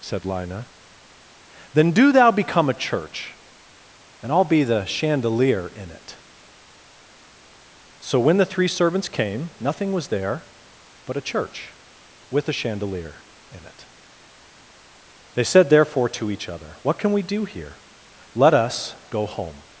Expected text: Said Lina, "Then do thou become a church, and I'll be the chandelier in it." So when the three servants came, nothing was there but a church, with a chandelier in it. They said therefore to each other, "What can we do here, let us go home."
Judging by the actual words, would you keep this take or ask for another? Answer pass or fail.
pass